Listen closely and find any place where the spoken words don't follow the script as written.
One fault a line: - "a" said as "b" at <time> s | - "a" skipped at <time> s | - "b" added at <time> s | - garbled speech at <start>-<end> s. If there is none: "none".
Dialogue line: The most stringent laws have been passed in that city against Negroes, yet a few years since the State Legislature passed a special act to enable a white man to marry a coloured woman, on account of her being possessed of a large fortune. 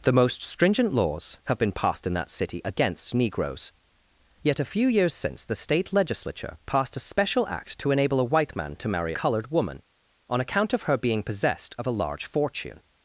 - "a" skipped at 9.1 s